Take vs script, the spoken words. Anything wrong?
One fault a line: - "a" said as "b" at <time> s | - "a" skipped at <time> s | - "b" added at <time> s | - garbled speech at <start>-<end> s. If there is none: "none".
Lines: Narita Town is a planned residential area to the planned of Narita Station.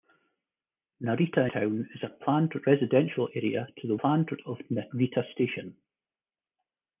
none